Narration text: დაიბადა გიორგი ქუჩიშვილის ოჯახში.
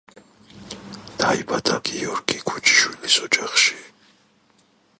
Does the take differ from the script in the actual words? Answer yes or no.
no